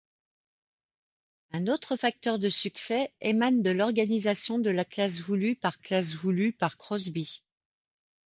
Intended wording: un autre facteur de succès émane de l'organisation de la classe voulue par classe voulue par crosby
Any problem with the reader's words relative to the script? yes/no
no